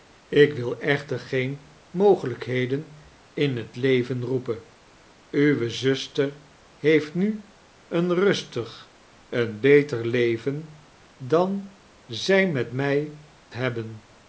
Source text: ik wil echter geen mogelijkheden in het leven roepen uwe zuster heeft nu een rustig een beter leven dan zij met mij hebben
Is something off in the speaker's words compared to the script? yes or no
no